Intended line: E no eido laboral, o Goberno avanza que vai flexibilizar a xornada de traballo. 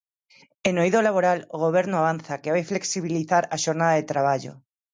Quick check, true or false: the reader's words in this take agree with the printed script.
true